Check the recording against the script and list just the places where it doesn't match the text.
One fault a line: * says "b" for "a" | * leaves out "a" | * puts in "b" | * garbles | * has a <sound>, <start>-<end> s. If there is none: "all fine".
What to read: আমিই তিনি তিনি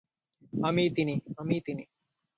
* puts in "আমিই"